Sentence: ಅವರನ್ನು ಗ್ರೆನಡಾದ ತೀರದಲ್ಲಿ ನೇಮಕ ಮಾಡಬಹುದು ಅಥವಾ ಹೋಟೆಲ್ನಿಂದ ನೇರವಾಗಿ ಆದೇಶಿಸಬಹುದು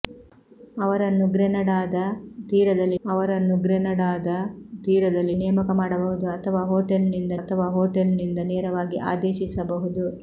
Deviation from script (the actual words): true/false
true